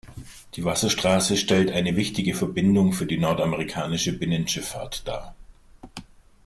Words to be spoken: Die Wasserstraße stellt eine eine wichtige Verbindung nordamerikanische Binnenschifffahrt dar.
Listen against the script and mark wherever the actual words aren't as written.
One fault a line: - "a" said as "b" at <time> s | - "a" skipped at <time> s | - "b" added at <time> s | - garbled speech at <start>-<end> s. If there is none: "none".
- "eine" skipped at 1.9 s
- "für die" added at 2.9 s